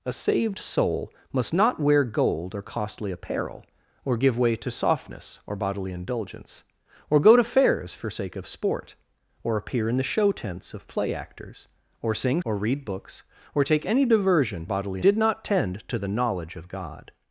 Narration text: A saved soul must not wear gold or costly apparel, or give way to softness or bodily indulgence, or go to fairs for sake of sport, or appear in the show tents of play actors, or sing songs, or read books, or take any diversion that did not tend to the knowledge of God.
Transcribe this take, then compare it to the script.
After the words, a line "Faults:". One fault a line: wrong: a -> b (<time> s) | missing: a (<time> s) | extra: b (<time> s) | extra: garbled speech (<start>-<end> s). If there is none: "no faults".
A saved soul must not wear gold or costly apparel, or give way to softness or bodily indulgence, or go to fairs for sake of sport, or appear in the show tents of play actors, or sing or read books, or take any diversion bodily did not tend to the knowledge of God.
Faults:
missing: songs (12.4 s)
wrong: that -> bodily (14.6 s)